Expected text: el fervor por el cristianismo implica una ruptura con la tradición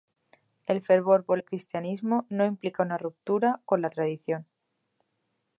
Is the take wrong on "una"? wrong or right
right